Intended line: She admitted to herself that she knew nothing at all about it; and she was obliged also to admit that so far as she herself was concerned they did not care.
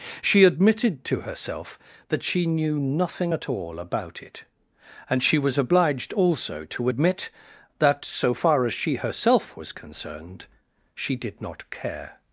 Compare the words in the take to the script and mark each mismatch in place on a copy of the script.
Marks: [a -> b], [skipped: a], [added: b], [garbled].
She admitted to herself that she knew nothing at all about it; and she was obliged also to admit that so far as she herself was concerned [they -> she] did not care.